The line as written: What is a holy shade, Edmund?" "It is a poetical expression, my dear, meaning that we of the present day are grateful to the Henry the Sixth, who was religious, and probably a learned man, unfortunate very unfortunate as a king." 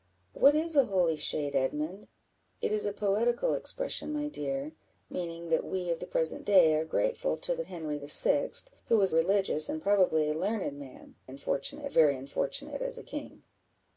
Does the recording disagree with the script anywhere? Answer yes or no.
no